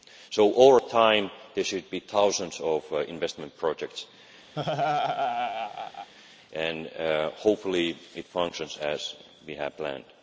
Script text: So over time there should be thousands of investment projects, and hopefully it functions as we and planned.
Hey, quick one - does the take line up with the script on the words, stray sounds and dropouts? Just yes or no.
no